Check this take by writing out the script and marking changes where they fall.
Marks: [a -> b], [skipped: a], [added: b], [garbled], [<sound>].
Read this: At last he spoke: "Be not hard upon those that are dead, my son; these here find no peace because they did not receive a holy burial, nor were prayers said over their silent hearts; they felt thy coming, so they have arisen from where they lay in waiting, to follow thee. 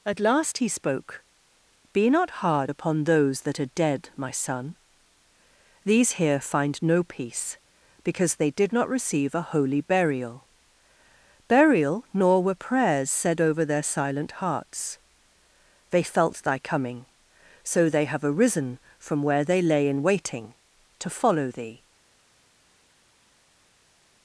At last he spoke: "Be not hard upon those that are dead, my son; these here find no peace because they did not receive a holy burial, [added: burial] nor were prayers said over their silent hearts; they felt thy coming, so they have arisen from where they lay in waiting, to follow thee.